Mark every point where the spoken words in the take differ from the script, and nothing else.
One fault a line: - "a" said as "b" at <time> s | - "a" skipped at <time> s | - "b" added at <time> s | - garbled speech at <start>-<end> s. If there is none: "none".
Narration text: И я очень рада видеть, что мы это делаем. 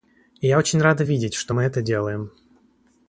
none